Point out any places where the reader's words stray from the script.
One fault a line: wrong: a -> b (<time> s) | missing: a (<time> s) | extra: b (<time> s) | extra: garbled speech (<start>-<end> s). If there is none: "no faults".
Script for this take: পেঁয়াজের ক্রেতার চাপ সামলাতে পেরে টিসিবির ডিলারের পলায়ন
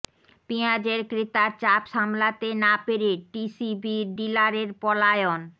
extra: না (2.6 s)